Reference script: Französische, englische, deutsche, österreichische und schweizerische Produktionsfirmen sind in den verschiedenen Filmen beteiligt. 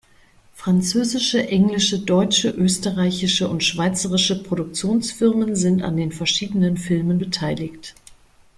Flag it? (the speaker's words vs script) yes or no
yes